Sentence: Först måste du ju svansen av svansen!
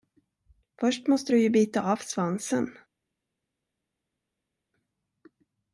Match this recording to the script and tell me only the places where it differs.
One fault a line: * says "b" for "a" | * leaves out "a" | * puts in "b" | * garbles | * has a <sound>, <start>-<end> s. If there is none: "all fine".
* says "bita" for "svansen"